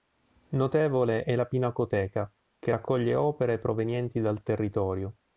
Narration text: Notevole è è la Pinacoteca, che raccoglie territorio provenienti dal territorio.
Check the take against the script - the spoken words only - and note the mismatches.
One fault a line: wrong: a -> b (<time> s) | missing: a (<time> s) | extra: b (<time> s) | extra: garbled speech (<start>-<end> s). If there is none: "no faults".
missing: è (1.4 s)
wrong: territorio -> opere (3.2 s)